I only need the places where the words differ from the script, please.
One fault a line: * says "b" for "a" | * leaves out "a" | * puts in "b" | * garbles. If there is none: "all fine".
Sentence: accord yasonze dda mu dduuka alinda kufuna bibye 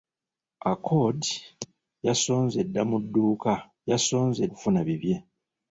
* says "yasonze" for "alinda"